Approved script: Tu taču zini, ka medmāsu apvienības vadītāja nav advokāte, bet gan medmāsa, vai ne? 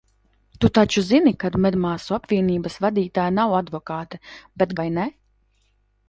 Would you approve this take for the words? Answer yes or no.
no